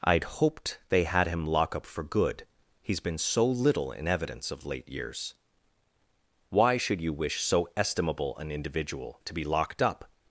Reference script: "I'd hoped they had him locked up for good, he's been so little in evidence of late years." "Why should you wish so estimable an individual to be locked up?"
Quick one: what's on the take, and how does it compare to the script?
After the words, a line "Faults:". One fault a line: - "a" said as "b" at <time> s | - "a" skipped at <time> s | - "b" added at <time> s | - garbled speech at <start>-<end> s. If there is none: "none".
"I'd hoped they had him lock up for good, he's been so little in evidence of late years." "Why should you wish so estimable an individual to be locked up?"
Faults:
- "locked" said as "lock" at 1.4 s